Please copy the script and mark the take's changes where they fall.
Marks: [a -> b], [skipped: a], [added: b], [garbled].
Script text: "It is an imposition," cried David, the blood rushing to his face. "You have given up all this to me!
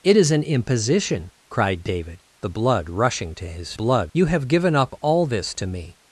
"It is an imposition," cried David, the blood rushing to his [face. -> blood] "You have given up all this to me!